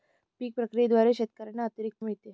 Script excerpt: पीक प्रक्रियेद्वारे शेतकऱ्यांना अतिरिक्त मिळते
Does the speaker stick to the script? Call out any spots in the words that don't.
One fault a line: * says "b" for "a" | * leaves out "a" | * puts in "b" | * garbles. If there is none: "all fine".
all fine